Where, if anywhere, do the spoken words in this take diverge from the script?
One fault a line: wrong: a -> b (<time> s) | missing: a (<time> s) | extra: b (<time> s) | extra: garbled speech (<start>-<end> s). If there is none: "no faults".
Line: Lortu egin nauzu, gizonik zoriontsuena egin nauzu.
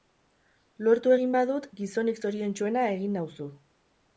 wrong: nauzu -> badut (1.4 s)